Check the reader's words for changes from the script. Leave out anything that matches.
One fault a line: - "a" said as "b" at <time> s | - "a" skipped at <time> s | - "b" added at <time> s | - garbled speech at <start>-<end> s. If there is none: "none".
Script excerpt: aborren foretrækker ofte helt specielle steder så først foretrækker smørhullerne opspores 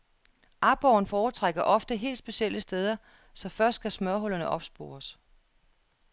- "foretrækker" said as "skal" at 3.7 s